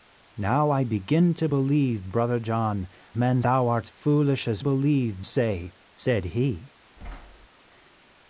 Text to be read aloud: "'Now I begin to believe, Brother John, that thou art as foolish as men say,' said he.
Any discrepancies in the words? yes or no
yes